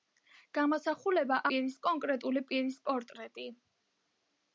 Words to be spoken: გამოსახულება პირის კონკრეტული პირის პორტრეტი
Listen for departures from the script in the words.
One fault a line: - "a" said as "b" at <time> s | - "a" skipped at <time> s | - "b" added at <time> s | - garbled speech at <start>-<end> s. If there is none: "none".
none